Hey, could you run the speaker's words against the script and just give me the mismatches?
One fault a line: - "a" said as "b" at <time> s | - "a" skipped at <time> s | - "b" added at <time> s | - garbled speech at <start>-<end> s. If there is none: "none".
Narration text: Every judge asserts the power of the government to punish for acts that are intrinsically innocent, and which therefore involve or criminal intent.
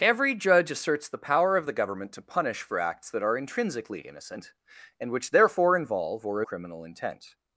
none